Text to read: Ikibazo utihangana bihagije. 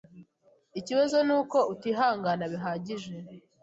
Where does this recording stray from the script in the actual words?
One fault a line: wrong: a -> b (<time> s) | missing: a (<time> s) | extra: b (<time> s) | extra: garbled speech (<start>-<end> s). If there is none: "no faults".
extra: nuko (1.3 s)